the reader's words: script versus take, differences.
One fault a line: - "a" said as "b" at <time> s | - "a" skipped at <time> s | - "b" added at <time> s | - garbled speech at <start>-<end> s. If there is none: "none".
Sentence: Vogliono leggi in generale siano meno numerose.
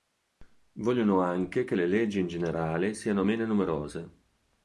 - "anche che le" added at 1.2 s